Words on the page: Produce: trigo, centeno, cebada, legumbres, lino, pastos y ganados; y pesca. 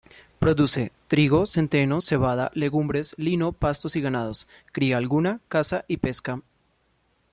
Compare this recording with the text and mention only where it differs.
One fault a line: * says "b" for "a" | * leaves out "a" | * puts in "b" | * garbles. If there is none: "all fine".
* puts in "cría alguna caza"